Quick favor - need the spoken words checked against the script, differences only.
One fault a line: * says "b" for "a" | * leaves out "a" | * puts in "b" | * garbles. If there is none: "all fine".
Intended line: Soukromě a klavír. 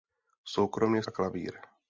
all fine